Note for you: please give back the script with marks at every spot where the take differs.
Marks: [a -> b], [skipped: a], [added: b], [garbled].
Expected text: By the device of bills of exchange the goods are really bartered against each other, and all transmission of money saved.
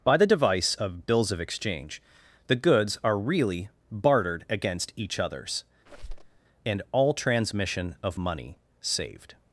By the device of bills of exchange the goods are really bartered against each [other, -> others] and all transmission of money saved.